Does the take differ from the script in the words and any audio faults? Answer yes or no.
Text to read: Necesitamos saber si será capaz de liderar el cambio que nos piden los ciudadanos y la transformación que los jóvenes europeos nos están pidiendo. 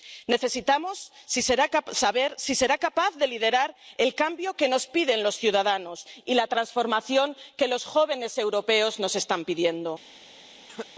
yes